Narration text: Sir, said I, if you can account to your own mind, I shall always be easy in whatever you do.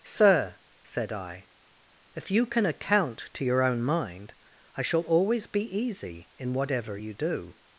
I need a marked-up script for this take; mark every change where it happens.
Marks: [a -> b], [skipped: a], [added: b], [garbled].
Sir, said I, if you can account to your own mind, I shall always be easy in whatever you do.